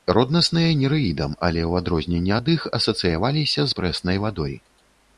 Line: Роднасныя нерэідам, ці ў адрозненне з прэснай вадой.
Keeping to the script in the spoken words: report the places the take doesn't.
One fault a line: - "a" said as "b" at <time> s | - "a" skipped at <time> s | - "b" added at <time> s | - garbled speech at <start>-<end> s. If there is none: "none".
- "ці" said as "але" at 1.5 s
- "ад іх асацыяваліся" added at 2.4 s